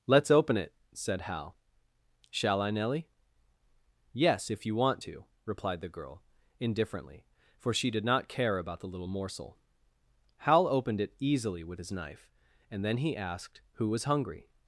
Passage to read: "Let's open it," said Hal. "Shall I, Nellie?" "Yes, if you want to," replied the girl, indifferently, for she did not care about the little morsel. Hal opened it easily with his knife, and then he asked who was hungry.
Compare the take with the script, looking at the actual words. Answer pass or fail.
pass